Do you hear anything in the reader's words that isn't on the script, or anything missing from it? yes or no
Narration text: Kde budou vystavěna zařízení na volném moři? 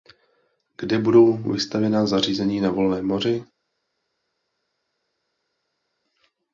no